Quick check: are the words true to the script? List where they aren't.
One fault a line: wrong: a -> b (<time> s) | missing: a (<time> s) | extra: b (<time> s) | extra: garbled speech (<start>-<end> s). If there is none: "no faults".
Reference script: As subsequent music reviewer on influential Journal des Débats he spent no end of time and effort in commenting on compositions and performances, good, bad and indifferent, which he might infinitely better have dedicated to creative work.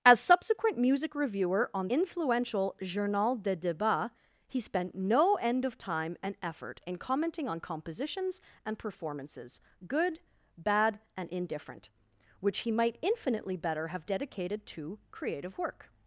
no faults